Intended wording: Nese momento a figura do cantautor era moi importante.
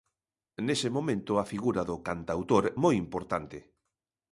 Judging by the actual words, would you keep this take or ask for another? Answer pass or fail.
fail